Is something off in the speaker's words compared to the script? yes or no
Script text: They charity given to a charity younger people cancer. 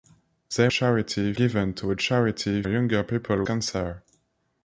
no